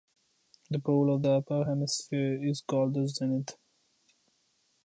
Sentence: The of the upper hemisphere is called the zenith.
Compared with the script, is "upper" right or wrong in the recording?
right